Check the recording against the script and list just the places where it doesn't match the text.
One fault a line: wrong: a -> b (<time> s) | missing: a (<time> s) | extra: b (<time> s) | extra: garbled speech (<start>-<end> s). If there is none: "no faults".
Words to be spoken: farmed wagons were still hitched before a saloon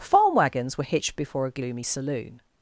wrong: farmed -> farm (0.0 s)
missing: still (0.8 s)
extra: gloomy (1.5 s)